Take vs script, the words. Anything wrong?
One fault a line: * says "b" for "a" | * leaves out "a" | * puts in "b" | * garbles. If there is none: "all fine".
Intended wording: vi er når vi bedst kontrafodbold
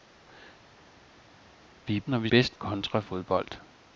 all fine